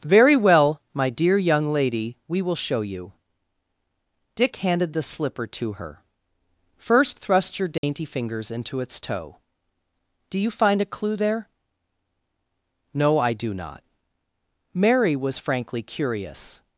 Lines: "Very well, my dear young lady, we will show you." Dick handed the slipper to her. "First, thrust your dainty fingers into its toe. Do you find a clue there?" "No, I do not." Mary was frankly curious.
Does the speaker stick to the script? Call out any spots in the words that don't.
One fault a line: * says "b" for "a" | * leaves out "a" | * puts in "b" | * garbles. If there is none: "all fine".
all fine